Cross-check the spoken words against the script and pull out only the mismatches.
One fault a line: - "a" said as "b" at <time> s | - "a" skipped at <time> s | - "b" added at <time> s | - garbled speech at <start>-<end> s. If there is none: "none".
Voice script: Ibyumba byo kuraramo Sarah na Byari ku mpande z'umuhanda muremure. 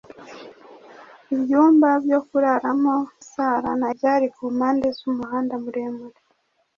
none